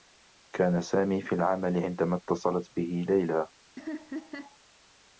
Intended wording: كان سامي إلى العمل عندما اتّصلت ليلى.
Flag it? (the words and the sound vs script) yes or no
yes